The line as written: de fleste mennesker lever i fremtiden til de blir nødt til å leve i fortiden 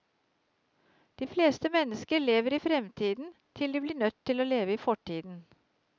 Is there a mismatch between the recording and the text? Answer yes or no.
no